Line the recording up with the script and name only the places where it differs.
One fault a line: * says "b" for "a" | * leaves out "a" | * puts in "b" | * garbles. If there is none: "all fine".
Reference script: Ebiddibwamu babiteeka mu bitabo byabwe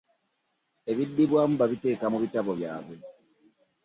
all fine